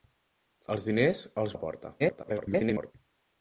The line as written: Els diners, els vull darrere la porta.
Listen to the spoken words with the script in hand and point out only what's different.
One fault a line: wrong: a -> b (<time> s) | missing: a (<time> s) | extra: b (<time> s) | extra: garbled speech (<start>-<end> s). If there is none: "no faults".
missing: vull darrere (1.6 s)
extra: garbled speech (2.0-2.9 s)